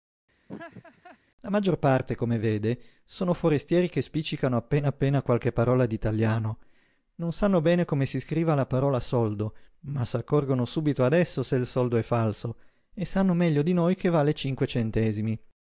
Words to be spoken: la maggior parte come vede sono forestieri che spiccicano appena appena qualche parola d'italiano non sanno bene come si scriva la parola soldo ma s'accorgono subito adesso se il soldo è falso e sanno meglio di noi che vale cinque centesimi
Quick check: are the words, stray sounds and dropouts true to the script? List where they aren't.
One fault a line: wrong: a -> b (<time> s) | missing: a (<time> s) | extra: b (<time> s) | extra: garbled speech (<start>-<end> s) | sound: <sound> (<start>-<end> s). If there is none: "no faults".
sound: laugh (0.5-1.2 s)